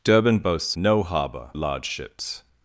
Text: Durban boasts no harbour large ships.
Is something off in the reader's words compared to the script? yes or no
no